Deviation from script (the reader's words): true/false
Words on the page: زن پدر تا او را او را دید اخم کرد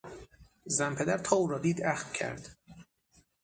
true